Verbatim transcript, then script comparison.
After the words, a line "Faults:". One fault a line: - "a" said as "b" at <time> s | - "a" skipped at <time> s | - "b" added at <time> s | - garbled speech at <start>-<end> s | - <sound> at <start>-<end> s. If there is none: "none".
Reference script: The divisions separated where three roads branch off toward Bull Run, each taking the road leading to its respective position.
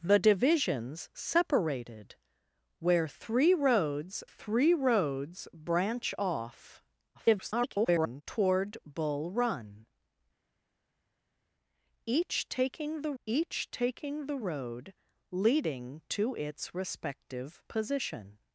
The divisions separated where three roads three roads branch off [garbled] toward Bull Run, each taking the each taking the road leading to its respective position.
Faults:
- "three roads" added at 4.2 s
- garbled speech at 7.1-8.2 s
- "each taking the" added at 13.2 s